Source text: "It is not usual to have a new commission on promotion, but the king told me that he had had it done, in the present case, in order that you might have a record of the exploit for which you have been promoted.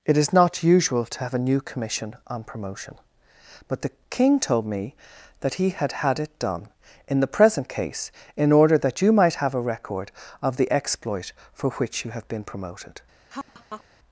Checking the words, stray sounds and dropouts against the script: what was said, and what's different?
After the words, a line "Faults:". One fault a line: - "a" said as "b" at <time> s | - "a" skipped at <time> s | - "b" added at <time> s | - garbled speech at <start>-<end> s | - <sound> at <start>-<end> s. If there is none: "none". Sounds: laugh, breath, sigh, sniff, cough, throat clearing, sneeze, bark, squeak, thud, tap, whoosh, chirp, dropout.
"It is not usual to have a new commission on promotion, but the king told me that he had had it done, in the present case, in order that you might have a record of the exploit for which you have been promoted.
Faults:
- laugh at 13.3-13.8 s